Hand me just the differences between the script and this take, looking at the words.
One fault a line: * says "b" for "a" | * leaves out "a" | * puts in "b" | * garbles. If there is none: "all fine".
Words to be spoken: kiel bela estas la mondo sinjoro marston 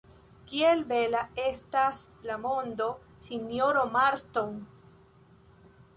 all fine